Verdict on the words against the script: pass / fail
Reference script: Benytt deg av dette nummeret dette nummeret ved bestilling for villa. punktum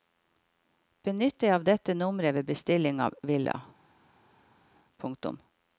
fail